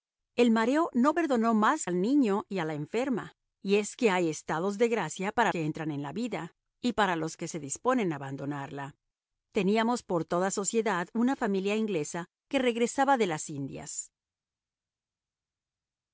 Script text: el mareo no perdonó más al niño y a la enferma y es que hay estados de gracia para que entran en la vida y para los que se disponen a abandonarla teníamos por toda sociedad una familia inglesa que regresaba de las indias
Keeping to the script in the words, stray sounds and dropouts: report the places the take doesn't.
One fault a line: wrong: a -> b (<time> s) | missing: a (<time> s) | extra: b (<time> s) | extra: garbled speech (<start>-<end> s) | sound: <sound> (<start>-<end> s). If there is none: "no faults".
no faults